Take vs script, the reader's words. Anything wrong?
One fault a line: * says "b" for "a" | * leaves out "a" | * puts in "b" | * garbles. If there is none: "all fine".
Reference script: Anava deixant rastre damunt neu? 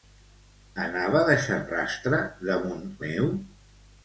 all fine